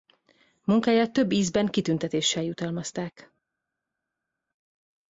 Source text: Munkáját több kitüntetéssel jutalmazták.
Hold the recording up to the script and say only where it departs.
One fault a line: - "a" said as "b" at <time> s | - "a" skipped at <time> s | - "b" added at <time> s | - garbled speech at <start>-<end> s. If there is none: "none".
- "ízben" added at 1.3 s